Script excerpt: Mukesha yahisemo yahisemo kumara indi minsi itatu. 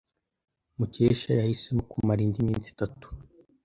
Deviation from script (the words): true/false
true